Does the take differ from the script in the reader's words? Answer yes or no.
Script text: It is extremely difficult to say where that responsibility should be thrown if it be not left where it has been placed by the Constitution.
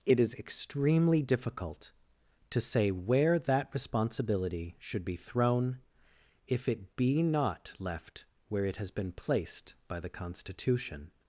no